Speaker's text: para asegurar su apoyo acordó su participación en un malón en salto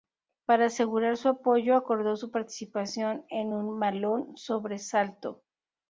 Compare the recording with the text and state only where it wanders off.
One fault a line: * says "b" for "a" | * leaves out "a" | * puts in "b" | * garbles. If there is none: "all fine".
* says "sobre" for "en"